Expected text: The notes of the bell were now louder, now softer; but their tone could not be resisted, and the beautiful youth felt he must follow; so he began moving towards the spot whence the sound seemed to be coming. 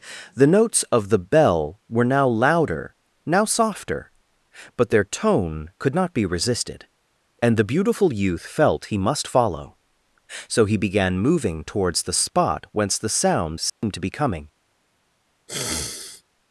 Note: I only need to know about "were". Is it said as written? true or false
true